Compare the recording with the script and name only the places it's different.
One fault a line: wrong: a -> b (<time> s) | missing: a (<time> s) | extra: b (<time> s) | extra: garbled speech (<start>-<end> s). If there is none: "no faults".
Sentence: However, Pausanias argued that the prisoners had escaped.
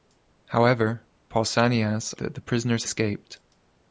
missing: argued (2.1 s)
missing: had (2.8 s)